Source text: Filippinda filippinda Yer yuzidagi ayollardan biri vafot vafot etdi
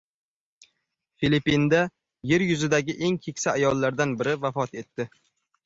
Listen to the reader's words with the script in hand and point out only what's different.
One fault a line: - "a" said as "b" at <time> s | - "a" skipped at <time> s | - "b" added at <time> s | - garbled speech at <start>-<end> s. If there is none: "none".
- "filippinda" skipped at 1.8 s
- "eng keksa" added at 3.1 s
- "vafot" skipped at 4.8 s